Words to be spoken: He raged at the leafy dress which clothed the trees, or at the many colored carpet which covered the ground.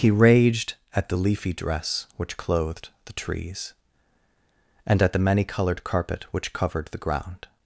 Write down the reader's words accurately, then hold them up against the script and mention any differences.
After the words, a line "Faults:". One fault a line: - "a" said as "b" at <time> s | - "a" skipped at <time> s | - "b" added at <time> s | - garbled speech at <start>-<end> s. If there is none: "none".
He raged at the leafy dress which clothed the trees, and at the many colored carpet which covered the ground.
Faults:
- "or" said as "and" at 4.8 s